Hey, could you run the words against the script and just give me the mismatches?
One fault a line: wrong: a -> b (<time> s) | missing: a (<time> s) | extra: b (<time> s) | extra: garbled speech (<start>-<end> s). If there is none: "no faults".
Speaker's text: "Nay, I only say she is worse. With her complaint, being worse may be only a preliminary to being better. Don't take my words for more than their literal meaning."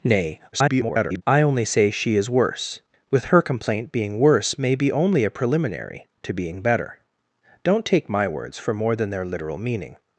extra: garbled speech (0.5-1.2 s)